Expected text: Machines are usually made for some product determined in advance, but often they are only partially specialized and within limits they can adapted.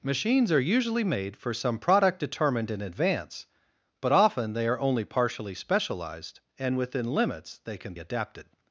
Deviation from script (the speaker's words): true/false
false